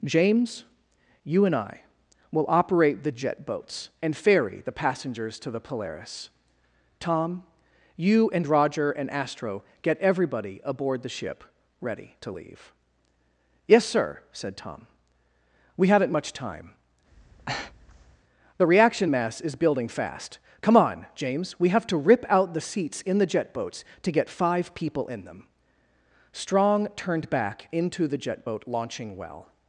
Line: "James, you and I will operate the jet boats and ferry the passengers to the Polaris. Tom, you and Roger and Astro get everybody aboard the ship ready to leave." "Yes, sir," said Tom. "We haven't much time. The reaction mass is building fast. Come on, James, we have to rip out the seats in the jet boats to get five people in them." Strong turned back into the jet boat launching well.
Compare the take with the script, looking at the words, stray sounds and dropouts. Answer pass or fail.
fail